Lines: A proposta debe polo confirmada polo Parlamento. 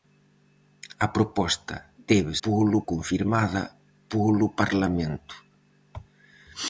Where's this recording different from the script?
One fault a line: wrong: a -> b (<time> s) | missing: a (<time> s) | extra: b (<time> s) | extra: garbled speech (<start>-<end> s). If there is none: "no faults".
no faults